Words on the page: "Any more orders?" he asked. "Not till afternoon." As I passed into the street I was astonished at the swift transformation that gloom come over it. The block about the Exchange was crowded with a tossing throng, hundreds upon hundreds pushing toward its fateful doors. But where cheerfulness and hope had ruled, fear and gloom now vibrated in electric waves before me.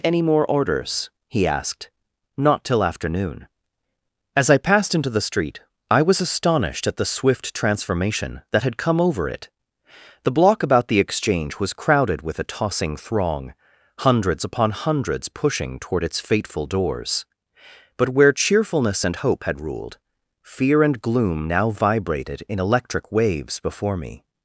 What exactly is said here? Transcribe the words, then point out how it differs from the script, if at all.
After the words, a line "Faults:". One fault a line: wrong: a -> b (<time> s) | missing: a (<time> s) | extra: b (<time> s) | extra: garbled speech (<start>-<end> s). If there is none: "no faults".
"Any more orders?" he asked. "Not till afternoon." As I passed into the street I was astonished at the swift transformation that had come over it. The block about the Exchange was crowded with a tossing throng, hundreds upon hundreds pushing toward its fateful doors. But where cheerfulness and hope had ruled, fear and gloom now vibrated in electric waves before me.
Faults:
wrong: gloom -> had (8.6 s)